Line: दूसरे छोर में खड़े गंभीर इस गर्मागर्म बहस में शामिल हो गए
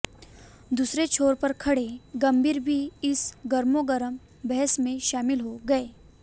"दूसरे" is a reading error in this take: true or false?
false